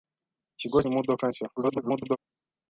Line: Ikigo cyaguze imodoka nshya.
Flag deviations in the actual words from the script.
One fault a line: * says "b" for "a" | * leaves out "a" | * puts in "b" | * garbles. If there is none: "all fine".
* leaves out "cyaguze"
* garbles